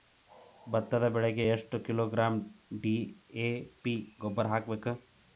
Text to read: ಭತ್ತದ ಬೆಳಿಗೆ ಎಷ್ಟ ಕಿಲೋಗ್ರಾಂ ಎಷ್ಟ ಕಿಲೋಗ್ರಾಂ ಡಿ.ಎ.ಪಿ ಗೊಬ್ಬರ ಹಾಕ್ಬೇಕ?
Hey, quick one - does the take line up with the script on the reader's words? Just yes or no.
no